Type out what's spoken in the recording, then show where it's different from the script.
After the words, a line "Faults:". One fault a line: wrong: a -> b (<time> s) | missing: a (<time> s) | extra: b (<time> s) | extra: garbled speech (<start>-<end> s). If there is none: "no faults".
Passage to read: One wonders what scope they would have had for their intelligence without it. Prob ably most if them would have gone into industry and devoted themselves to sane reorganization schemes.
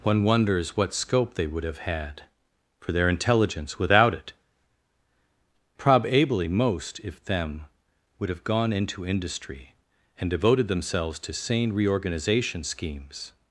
One wonders what scope they would have had for their intelligence without it. Prob ably most if them would have gone into industry and devoted themselves to sane reorganization schemes.
Faults:
no faults